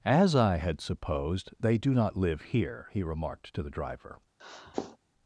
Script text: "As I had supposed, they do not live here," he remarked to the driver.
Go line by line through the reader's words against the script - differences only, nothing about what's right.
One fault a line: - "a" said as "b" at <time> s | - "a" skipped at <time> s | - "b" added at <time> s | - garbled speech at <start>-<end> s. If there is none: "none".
none